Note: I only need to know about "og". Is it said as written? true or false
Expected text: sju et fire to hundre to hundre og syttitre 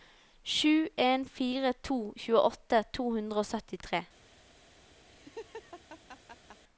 true